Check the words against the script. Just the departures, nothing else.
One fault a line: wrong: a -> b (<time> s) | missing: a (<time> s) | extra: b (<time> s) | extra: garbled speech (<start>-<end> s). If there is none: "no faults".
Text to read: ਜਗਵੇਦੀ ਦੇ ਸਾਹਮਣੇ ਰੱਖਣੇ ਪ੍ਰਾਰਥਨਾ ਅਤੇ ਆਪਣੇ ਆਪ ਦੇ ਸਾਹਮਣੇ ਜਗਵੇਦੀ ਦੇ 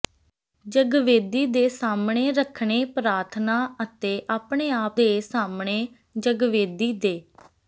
no faults